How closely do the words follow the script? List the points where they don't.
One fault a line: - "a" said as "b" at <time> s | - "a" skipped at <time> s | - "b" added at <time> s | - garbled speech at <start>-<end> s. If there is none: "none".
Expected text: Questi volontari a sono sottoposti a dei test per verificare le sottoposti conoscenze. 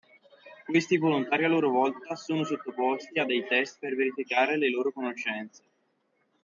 - "loro volta" added at 1.5 s
- "sottoposti" said as "loro" at 4.7 s